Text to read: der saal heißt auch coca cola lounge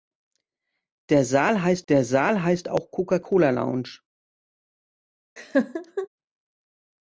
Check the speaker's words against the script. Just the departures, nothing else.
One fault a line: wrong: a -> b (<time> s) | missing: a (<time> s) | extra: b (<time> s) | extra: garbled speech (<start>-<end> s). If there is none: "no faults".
extra: der saal heißt (1.9 s)